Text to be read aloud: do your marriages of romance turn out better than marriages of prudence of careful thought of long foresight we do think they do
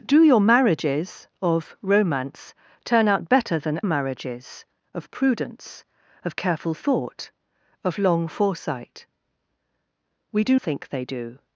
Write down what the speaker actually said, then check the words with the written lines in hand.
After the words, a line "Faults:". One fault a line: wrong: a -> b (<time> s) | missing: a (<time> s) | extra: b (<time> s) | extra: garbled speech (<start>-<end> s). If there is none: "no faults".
do your marriages of romance turn out better than marriages of prudence of careful thought of long foresight we do think they do
Faults:
no faults